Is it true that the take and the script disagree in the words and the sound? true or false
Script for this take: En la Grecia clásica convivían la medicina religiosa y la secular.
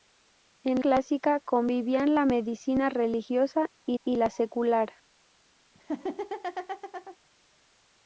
true